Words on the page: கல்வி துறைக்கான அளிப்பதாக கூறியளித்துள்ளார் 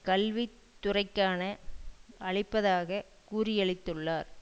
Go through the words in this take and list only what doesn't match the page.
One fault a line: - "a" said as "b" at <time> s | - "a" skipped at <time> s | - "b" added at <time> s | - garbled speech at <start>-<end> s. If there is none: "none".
none